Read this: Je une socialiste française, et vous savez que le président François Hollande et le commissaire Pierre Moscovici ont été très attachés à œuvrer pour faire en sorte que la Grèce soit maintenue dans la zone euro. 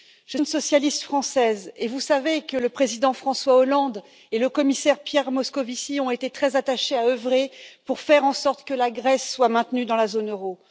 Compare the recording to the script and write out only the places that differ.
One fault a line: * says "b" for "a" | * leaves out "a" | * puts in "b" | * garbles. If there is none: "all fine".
all fine